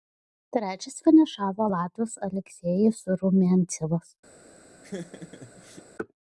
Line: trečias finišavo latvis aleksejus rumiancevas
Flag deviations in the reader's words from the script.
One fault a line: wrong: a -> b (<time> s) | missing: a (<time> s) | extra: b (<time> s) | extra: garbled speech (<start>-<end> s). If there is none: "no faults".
no faults